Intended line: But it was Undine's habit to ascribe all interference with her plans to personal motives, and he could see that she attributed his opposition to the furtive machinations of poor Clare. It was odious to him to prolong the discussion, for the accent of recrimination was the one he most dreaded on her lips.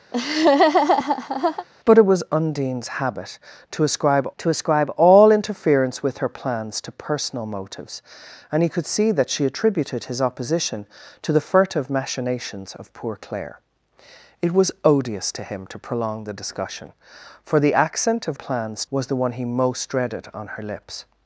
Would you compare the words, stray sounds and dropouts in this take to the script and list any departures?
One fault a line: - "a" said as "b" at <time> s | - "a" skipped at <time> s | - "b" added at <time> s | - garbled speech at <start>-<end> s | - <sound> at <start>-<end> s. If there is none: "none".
- laugh at 0.1-1.7 s
- "to ascribe" added at 4.4 s
- "recrimination" said as "plans" at 18.3 s